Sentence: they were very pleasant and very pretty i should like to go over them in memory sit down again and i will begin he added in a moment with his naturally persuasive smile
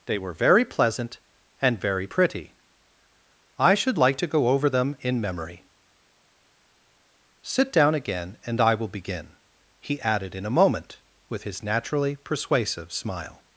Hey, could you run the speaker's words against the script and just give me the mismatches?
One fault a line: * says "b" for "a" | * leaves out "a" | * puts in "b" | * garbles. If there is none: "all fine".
all fine